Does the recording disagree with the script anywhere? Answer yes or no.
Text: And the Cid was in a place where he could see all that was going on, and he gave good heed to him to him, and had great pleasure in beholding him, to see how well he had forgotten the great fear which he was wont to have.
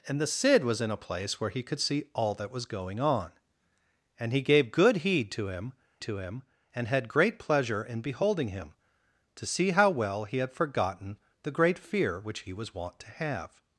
no